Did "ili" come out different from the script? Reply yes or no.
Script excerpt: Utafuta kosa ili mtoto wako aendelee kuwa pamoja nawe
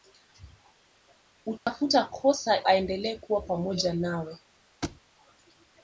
yes